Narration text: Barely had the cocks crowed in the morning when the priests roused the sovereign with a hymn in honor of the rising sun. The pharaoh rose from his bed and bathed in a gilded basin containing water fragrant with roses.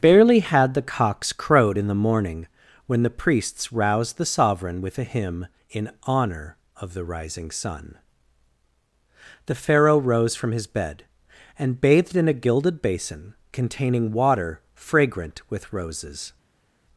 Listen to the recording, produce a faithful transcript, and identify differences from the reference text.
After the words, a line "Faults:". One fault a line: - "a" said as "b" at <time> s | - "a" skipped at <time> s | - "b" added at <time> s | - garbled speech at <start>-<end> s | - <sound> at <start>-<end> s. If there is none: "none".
Barely had the cocks crowed in the morning when the priests roused the sovereign with a hymn in honor of the rising sun. The pharaoh rose from his bed and bathed in a gilded basin containing water fragrant with roses.
Faults:
none